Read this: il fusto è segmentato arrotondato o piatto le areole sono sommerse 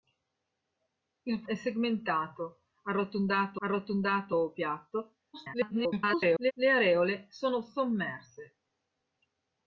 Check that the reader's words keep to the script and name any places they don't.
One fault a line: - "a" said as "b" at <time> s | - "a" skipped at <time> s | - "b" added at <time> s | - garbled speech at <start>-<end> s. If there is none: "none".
- "fusto" skipped at 1.4 s
- "arrotondato" added at 3.6 s
- garbled speech at 5.3-6.5 s